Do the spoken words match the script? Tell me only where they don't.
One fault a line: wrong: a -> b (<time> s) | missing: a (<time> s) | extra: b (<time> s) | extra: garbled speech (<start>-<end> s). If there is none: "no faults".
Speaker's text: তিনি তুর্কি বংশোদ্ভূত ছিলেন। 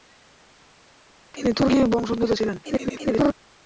extra: garbled speech (2.6-3.3 s)